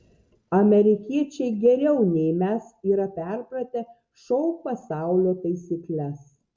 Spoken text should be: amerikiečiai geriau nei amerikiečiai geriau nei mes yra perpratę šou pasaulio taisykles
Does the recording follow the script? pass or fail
fail